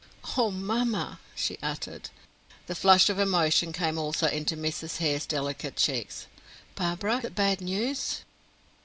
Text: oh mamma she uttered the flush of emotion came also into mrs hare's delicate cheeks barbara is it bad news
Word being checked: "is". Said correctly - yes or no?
no